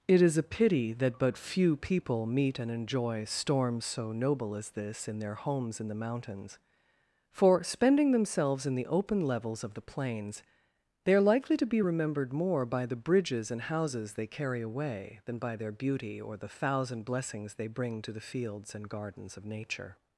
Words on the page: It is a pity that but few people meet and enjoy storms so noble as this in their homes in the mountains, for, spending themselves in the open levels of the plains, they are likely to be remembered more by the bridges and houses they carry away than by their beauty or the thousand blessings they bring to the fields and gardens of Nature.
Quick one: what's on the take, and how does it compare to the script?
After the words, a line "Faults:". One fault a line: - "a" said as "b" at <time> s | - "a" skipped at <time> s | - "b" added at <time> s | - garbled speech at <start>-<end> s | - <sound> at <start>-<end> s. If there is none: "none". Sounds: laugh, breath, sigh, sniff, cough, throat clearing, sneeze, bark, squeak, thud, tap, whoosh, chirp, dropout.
It is a pity that but few people meet and enjoy storms so noble as this in their homes in the mountains, for, spending themselves in the open levels of the plains, they are likely to be remembered more by the bridges and houses they carry away than by their beauty or the thousand blessings they bring to the fields and gardens of Nature.
Faults:
none